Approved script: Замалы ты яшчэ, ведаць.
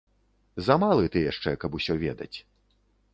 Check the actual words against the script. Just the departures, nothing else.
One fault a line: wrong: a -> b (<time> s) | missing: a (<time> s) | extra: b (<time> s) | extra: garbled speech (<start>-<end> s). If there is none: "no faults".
extra: каб усё (1.6 s)